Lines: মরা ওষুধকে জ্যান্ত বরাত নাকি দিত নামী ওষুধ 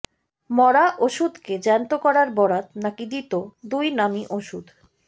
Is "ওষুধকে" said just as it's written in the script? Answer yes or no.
yes